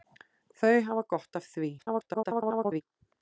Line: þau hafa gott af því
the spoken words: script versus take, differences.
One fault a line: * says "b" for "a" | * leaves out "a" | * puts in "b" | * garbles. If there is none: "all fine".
* garbles